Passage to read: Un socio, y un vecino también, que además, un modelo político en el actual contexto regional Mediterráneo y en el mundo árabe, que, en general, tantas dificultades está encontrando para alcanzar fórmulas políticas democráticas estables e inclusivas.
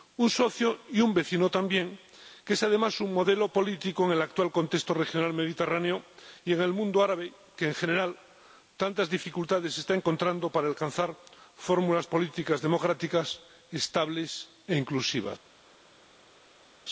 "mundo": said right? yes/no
yes